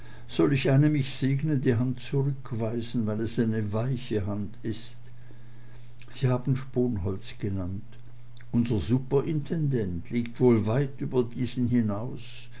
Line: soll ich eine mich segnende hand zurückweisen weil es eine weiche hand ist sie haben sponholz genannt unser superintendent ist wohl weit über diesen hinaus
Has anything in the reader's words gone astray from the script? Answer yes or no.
yes